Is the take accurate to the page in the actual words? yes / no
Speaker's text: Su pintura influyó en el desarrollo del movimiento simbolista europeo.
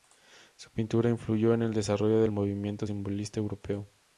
yes